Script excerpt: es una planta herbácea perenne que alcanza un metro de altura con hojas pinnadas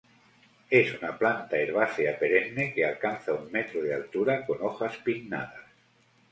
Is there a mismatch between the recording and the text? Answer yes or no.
no